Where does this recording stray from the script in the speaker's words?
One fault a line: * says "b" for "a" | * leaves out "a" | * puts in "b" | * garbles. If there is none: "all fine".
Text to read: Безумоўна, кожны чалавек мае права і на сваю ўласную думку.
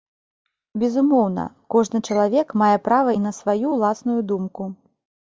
all fine